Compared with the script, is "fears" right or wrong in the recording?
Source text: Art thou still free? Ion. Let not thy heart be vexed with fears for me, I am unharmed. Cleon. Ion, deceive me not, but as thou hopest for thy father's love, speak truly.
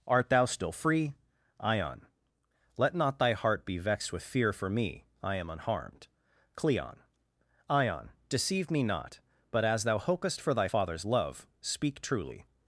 wrong